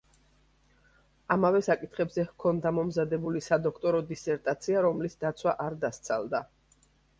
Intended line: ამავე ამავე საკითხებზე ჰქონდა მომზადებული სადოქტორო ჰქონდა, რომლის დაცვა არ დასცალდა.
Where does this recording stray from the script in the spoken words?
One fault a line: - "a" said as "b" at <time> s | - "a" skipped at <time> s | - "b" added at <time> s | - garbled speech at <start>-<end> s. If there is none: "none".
- "ამავე" skipped at 1.6 s
- "ჰქონდა" said as "დისერტაცია" at 4.1 s